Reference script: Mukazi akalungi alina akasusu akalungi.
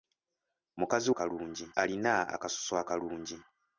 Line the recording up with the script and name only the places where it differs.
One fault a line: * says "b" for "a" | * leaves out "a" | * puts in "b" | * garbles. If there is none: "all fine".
all fine